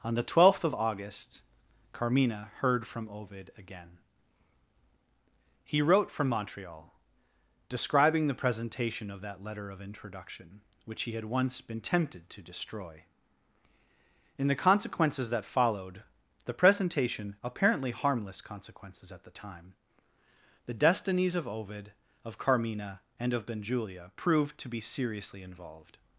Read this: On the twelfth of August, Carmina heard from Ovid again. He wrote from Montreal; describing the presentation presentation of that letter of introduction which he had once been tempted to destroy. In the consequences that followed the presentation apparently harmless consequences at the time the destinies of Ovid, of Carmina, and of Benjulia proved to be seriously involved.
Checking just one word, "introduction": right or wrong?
right